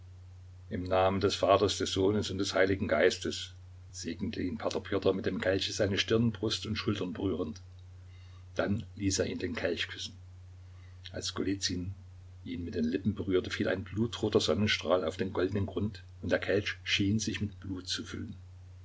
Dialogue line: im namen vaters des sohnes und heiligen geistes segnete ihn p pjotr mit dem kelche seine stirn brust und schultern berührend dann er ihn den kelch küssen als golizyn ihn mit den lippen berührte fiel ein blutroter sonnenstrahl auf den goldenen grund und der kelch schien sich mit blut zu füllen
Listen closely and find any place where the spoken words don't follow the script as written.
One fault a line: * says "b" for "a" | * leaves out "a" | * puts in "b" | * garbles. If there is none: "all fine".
* puts in "des"
* puts in "des"
* puts in "ließ"